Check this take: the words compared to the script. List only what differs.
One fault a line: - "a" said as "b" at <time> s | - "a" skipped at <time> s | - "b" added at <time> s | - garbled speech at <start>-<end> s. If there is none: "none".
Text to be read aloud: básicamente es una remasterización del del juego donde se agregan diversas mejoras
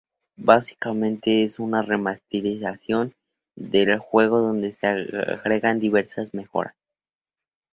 - "del" skipped at 4.0 s